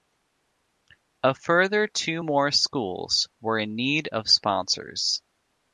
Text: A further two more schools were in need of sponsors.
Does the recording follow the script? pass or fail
pass